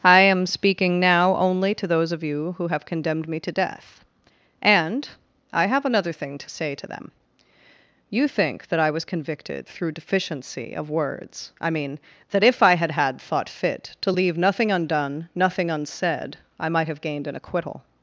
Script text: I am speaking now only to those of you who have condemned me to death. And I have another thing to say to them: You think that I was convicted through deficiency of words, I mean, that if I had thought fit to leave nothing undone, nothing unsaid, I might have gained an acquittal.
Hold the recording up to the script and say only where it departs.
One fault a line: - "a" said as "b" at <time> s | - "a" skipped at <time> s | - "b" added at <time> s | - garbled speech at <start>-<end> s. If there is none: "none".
- "had" added at 12.9 s